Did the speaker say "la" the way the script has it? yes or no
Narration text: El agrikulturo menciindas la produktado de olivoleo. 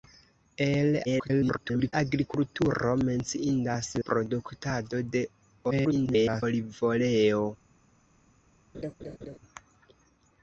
no